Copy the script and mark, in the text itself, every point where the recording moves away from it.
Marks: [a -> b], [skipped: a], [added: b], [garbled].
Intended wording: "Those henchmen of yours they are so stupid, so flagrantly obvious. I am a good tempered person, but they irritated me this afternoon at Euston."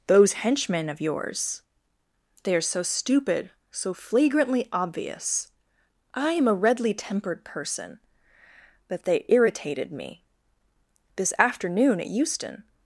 "Those henchmen of yours they are so stupid, so flagrantly obvious. I am a [good -> redly] tempered person, but they irritated me this afternoon at Euston."